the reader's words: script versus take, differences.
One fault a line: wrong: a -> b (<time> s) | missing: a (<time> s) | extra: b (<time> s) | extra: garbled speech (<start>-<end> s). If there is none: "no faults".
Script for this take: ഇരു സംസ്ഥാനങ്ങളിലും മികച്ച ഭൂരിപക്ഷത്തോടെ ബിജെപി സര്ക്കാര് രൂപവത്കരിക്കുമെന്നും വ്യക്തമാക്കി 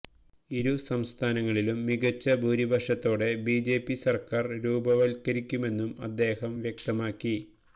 extra: അദ്ദേഹം (6.1 s)